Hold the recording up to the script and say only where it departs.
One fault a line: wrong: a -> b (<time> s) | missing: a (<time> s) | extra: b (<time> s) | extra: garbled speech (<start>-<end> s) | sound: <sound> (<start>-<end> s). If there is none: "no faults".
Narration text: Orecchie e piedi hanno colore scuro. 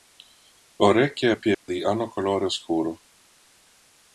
sound: dropout (1.5-1.7 s)